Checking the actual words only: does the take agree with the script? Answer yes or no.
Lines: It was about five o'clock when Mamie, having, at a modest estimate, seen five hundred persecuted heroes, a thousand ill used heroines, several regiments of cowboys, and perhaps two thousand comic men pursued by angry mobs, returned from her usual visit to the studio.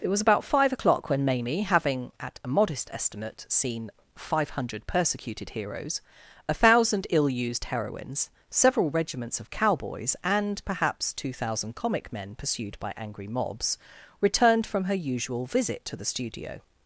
yes